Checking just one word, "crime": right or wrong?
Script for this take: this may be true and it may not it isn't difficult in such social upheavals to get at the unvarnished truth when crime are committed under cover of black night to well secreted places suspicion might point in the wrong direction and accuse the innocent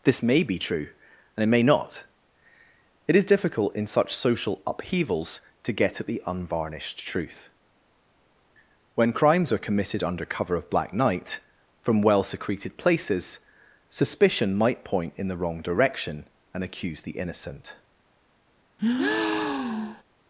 wrong